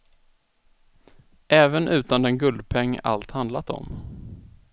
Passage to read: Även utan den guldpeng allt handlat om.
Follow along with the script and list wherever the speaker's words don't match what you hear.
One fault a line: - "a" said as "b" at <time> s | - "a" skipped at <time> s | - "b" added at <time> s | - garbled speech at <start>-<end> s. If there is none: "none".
none